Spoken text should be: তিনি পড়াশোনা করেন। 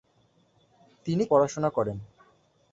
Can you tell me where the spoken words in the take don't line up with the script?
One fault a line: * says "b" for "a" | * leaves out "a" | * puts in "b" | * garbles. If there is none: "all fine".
all fine